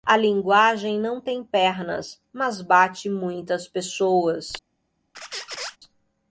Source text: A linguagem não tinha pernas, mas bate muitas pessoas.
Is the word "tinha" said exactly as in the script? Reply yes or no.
no